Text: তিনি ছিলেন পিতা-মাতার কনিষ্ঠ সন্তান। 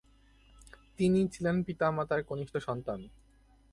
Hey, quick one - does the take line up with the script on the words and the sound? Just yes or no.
yes